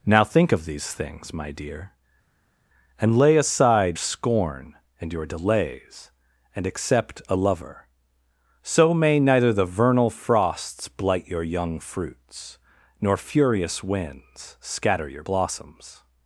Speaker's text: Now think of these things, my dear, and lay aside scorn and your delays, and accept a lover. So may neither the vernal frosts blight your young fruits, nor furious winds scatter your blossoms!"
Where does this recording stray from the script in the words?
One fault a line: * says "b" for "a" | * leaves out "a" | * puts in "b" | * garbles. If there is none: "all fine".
all fine